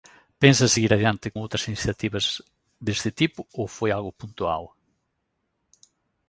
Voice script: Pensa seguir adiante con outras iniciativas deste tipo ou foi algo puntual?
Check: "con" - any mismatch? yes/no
yes